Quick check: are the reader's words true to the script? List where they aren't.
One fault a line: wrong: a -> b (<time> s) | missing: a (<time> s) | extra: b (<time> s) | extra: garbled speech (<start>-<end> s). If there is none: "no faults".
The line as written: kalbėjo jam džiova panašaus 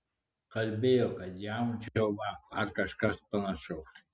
extra: kad (1.2 s)
extra: ar kažkas (2.6 s)